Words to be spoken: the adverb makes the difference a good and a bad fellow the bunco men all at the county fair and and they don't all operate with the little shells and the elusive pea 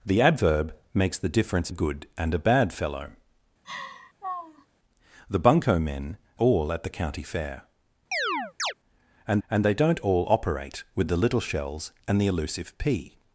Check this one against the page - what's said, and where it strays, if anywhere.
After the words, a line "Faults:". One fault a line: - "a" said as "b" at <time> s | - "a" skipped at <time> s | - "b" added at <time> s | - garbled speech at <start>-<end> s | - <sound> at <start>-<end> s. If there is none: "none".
the adverb makes the difference a good and a bad fellow the bunco men all at the county fair and and they don't all operate with the little shells and the elusive pea
Faults:
- laugh at 3.6-4.7 s
- chirp at 8.1-8.7 s